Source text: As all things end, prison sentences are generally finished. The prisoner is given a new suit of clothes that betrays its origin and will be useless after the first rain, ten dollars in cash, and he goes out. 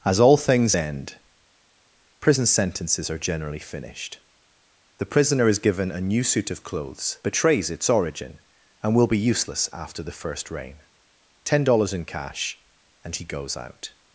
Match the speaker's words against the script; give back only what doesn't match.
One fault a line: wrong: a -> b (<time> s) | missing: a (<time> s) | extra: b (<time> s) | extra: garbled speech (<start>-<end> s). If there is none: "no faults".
missing: that (7.2 s)